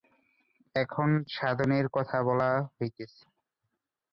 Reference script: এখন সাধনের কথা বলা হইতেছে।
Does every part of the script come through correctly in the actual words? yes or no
yes